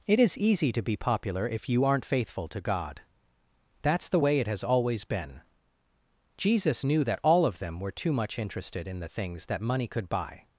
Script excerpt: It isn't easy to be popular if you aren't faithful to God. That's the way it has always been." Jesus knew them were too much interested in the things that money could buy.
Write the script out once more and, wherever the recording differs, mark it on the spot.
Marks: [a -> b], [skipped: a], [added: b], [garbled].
It [isn't -> is] easy to be popular if you aren't faithful to God. That's the way it has always been." Jesus knew [added: that all of] them were too much interested in the things that money could buy.